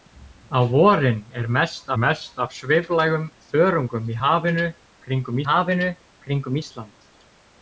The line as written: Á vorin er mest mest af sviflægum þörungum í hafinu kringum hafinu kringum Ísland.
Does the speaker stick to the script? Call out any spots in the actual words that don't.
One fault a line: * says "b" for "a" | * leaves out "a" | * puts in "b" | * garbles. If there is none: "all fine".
all fine